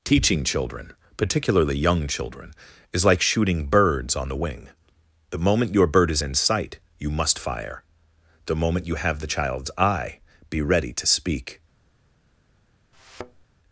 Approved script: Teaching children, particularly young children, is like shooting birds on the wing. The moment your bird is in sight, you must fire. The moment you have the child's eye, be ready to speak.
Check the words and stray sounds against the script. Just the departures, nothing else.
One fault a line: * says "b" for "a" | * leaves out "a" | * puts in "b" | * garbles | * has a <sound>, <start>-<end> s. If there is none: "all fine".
* has a thud, 12.9-13.4 s